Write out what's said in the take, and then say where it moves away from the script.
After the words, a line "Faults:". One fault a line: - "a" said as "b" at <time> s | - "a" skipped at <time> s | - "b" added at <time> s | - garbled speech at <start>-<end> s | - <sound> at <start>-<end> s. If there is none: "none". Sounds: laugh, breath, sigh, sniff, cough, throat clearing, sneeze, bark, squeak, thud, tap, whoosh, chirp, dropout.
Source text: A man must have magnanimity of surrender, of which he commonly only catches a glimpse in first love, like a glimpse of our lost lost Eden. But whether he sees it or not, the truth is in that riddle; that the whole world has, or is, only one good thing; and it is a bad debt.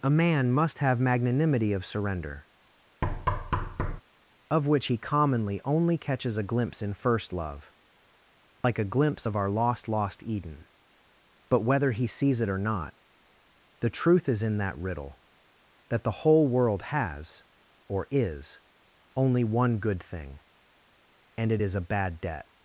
A man must have magnanimity of surrender, of which he commonly only catches a glimpse in first love, like a glimpse of our lost lost Eden. But whether he sees it or not, the truth is in that riddle; that the whole world has, or is, only one good thing; and it is a bad debt.
Faults:
- thud at 3.0-4.0 s
- dropout at 8.6-8.6 s